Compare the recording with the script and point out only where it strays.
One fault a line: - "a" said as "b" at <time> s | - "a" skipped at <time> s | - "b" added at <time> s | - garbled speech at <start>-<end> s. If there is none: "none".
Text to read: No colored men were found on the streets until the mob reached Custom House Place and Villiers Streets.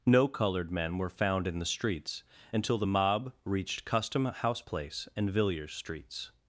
- "on" said as "in" at 1.5 s